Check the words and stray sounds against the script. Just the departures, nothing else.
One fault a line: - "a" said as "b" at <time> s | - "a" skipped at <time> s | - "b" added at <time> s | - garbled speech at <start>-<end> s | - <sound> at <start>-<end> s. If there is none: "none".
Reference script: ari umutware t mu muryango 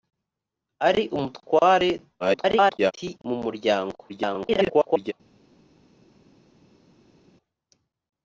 - garbled speech at 2.2-2.9 s
- garbled speech at 4.1-5.1 s